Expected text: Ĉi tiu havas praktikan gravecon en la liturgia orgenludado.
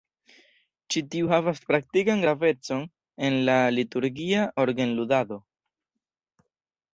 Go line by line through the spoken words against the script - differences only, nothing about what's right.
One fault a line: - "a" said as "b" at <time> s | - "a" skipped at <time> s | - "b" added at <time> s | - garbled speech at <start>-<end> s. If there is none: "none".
none